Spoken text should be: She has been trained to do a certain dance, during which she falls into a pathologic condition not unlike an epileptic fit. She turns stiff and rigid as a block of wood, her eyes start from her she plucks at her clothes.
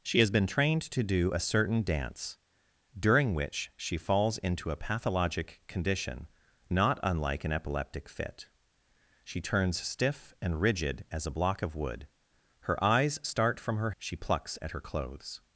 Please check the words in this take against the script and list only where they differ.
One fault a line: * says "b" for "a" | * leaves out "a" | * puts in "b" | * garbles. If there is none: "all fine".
all fine